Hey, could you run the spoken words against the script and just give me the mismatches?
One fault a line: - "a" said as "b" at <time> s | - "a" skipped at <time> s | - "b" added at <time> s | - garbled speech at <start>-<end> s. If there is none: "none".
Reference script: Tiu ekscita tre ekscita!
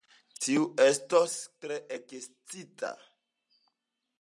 - "ekscita" said as "estos" at 0.8 s